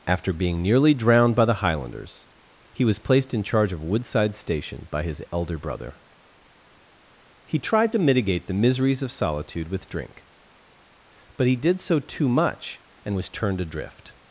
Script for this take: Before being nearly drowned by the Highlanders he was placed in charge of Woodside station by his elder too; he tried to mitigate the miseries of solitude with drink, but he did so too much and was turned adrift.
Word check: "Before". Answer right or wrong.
wrong